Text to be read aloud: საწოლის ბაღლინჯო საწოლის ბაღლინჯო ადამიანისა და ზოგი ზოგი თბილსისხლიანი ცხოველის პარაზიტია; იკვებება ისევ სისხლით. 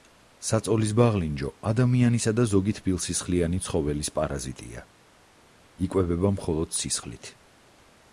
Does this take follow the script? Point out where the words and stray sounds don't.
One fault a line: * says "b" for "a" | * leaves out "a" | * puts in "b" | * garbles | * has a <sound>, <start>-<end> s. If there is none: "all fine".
* leaves out "საწოლის ბაღლინჯო"
* leaves out "ზოგი"
* says "მხოლოდ" for "ისევ"